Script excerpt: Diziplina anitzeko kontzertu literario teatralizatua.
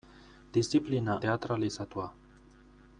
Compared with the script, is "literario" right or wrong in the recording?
wrong